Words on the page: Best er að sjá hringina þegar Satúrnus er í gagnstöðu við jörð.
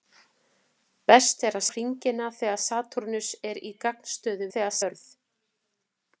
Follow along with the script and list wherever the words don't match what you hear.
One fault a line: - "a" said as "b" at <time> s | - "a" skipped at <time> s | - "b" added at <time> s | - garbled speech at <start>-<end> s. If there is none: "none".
- "sjá" skipped at 1.6 s
- "við" said as "þegar" at 4.5 s